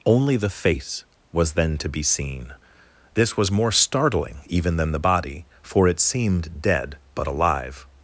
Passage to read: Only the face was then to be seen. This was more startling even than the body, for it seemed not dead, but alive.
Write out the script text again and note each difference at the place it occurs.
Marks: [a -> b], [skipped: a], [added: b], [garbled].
Only the face was then to be seen. This was more startling even than the body, for it seemed [skipped: not] dead, but alive.